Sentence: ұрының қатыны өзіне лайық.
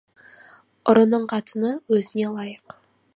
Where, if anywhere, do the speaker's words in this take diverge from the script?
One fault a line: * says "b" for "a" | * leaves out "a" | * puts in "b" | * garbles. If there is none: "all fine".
all fine